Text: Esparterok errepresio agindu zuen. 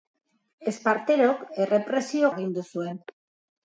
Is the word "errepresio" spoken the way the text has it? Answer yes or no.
yes